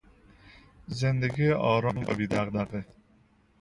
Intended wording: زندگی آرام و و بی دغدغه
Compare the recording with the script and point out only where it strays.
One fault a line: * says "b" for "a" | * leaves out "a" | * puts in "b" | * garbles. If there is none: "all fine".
* leaves out "و"